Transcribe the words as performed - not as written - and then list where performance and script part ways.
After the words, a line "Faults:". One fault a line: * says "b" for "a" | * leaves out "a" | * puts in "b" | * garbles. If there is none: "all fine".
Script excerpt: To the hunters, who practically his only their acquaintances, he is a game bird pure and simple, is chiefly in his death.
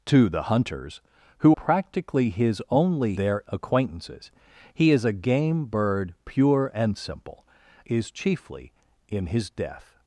To the hunters, who practically his only their acquaintances, he is a game bird pure and simple, is chiefly in his death.
Faults:
all fine